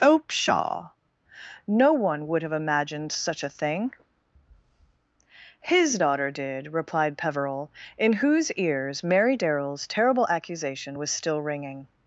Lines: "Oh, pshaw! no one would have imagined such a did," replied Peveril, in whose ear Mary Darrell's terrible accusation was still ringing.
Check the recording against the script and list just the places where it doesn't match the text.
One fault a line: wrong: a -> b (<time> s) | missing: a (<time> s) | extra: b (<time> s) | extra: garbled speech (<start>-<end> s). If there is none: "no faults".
extra: thing His daughter (3.5 s)
wrong: ear -> ears (8.5 s)